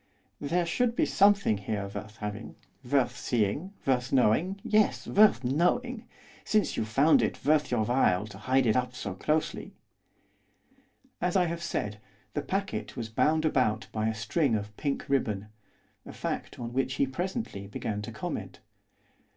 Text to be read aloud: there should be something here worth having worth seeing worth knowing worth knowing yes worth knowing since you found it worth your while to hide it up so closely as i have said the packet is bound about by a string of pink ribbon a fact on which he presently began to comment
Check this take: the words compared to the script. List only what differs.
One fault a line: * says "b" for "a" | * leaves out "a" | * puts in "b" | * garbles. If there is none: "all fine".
* leaves out "worth knowing"
* says "was" for "is"